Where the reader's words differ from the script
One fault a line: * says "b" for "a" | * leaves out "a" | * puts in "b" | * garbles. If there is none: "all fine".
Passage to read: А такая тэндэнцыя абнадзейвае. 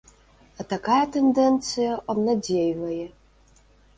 all fine